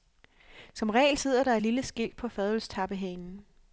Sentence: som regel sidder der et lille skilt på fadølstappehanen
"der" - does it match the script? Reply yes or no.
yes